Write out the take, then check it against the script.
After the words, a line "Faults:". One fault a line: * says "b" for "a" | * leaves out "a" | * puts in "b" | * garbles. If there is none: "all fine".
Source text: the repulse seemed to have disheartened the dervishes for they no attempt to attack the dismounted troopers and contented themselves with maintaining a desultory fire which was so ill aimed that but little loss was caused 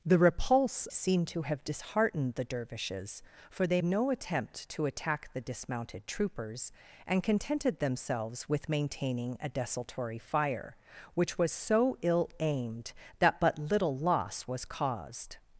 the repulse seemed to have disheartened the dervishes for they no attempt to attack the dismounted troopers and contented themselves with maintaining a desultory fire which was so ill aimed that but little loss was caused
Faults:
all fine